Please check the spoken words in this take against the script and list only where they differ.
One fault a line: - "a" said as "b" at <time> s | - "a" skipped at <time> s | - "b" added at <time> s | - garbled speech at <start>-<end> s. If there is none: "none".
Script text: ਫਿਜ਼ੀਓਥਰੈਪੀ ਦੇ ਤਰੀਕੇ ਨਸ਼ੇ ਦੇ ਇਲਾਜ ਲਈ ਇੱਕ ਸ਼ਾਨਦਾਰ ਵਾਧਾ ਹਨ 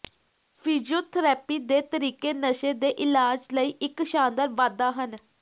none